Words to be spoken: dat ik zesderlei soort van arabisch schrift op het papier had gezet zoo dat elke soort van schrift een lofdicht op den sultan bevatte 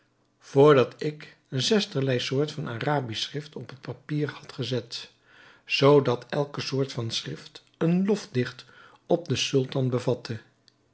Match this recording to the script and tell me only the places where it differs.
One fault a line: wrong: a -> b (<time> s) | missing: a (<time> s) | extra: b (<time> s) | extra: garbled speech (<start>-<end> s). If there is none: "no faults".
no faults